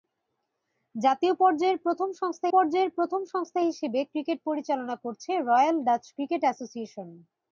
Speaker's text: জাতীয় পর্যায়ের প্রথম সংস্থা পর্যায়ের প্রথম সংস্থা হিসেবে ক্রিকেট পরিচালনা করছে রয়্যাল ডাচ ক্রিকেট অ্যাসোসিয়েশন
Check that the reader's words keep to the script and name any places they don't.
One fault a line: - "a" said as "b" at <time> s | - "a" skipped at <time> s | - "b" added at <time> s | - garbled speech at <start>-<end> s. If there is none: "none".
none